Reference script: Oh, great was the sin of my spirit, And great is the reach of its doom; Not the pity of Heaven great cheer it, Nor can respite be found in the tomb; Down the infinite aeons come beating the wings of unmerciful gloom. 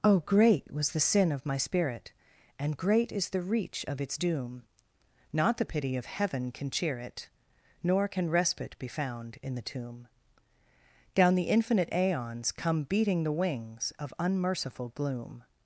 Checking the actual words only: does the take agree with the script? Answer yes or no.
no